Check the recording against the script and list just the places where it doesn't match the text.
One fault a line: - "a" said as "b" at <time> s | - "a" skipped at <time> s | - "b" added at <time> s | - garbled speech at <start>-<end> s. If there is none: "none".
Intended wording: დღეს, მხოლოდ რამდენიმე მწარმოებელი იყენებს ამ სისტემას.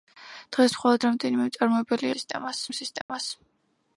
- "იყენებს" said as "სისტემას" at 2.1 s